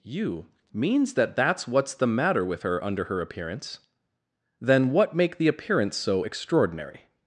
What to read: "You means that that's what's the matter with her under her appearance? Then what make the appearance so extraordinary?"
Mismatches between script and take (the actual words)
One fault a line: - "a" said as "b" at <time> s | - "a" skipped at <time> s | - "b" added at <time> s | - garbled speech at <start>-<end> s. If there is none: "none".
none